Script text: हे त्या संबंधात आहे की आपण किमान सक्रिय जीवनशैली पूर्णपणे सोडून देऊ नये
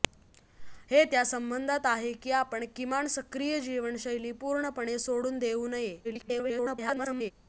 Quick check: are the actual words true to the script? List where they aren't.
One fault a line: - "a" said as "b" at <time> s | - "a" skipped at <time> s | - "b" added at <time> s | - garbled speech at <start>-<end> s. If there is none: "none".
- garbled speech at 6.0-7.3 s